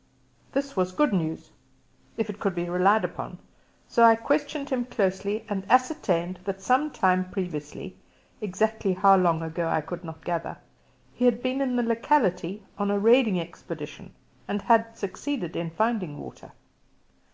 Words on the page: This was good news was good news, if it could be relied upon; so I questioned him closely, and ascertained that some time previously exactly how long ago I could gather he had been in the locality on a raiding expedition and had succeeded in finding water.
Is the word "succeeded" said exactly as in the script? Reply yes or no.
yes